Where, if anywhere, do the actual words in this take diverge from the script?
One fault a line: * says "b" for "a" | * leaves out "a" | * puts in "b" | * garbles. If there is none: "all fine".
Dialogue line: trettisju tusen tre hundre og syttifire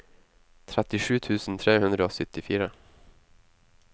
all fine